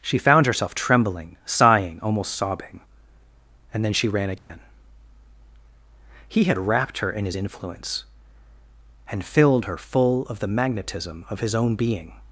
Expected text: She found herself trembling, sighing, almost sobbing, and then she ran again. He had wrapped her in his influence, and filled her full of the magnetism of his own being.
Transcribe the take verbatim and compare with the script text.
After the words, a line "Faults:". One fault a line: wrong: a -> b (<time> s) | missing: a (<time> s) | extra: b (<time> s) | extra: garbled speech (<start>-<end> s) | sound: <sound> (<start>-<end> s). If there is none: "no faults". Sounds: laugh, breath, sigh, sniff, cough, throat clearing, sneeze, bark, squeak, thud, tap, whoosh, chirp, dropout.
She found herself trembling, sighing, almost sobbing, and then she ran again. He had wrapped her in his influence, and filled her full of the magnetism of his own being.
Faults:
sound: dropout (4.4-4.5 s)